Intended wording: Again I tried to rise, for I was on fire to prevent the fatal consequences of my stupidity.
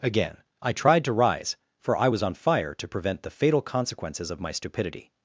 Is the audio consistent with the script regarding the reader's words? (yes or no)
yes